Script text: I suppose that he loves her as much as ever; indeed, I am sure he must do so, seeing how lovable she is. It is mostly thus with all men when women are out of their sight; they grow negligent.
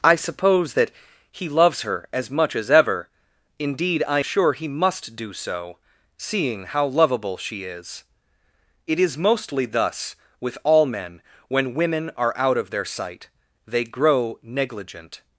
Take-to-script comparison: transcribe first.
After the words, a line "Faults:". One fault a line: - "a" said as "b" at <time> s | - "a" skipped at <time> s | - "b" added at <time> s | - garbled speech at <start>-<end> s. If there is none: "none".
I suppose that he loves her as much as ever; indeed, I sure he must do so, seeing how lovable she is. It is mostly thus with all men when women are out of their sight; they grow negligent.
Faults:
- "am" skipped at 4.2 s